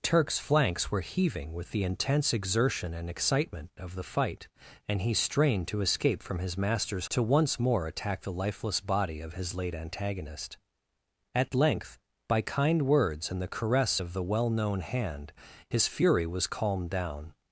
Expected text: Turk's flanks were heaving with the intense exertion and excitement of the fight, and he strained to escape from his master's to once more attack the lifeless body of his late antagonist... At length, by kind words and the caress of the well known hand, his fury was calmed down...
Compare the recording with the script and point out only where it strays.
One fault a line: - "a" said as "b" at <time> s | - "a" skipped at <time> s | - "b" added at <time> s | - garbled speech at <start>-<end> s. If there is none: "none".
none